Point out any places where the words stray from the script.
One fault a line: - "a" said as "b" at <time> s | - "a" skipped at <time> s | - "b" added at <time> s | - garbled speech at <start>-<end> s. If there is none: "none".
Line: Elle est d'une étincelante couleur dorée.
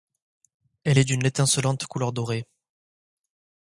none